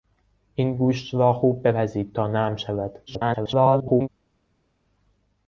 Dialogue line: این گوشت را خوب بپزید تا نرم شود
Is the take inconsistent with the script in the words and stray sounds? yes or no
yes